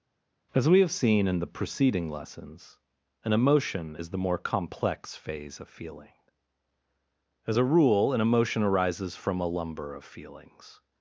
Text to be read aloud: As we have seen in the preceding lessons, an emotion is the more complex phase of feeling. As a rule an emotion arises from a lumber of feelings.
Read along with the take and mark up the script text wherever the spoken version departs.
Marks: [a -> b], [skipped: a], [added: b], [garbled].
As we have seen in the preceding lessons, an emotion is the more complex phase of feeling. As a rule an emotion arises from a lumber of feelings.